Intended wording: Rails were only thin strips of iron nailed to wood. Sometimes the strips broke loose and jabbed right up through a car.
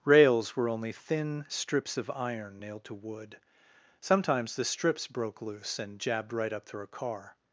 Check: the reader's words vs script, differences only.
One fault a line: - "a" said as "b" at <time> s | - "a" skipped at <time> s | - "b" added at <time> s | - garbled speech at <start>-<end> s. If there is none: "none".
none